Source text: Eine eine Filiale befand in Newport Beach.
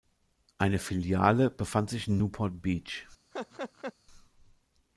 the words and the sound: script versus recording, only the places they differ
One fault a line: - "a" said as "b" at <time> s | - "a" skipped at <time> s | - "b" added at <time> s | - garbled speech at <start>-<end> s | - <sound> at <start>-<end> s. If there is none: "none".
- "eine" skipped at 0.8 s
- "sich" added at 1.9 s
- laugh at 3.3-3.9 s